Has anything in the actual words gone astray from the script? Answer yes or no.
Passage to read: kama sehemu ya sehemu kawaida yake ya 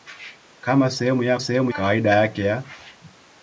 no